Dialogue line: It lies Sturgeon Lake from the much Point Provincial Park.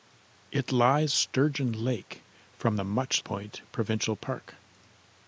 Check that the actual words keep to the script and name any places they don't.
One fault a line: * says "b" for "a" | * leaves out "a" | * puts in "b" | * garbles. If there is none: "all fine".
all fine